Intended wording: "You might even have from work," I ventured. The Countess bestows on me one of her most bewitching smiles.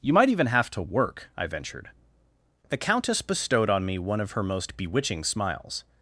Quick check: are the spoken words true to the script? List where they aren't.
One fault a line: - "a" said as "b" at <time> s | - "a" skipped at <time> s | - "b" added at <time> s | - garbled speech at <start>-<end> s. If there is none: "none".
- "from" said as "to" at 0.7 s
- "bestows" said as "bestowed" at 3.2 s